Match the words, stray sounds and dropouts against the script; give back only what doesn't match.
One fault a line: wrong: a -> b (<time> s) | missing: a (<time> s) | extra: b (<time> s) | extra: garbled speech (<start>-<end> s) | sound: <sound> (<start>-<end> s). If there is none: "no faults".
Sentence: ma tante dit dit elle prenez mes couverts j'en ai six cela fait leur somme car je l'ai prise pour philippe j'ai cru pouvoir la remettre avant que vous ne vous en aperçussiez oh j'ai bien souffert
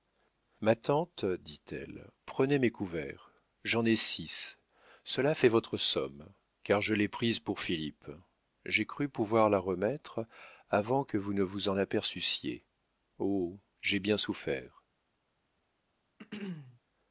missing: dit (1.6 s)
wrong: leur -> votre (5.5 s)
sound: throat clearing (16.2-16.8 s)